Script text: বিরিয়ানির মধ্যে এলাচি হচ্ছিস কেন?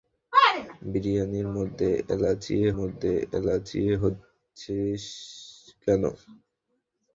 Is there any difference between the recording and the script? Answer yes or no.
yes